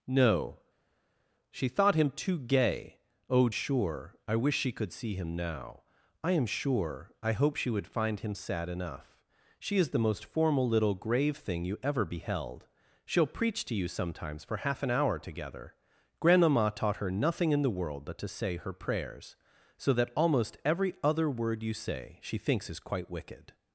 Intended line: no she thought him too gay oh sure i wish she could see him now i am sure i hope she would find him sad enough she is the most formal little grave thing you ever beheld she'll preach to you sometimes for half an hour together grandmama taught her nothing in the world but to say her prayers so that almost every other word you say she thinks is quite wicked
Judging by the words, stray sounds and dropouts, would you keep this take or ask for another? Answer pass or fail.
pass